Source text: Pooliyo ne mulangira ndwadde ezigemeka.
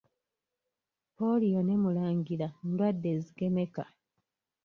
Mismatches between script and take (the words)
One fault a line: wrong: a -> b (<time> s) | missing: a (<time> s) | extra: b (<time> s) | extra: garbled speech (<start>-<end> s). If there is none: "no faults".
no faults